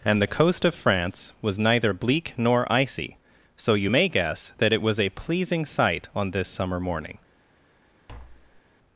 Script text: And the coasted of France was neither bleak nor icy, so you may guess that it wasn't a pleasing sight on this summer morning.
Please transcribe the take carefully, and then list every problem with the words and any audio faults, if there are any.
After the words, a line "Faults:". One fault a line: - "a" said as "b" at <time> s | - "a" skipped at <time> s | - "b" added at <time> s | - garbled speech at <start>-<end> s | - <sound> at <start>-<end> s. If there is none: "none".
And the coast of France was neither bleak nor icy, so you may guess that it was a pleasing sight on this summer morning.
Faults:
- "coasted" said as "coast" at 0.3 s
- "wasn't" said as "was" at 4.8 s
- tap at 8.1-8.6 s